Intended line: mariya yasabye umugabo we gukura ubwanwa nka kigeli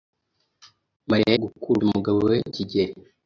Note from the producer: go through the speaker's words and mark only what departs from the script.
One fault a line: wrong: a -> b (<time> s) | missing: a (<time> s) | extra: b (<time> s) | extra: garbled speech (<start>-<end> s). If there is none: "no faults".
wrong: yasabye -> gukura (1.4 s)
missing: gukura ubwanwa nka (2.4 s)